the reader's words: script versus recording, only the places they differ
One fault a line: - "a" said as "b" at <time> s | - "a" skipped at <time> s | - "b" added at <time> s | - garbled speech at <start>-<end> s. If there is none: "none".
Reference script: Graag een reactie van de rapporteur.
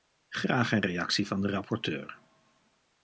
none